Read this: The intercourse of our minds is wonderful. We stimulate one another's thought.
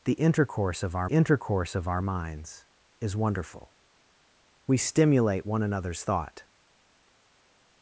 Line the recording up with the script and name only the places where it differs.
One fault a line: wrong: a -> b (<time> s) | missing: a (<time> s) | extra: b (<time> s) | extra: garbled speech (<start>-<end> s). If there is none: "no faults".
extra: intercourse of our (1.0 s)